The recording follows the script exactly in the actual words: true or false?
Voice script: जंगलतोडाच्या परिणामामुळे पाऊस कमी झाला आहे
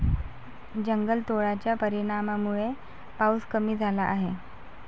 true